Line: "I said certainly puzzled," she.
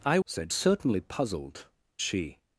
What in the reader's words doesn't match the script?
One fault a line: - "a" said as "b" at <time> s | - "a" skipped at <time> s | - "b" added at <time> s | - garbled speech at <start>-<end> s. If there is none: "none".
none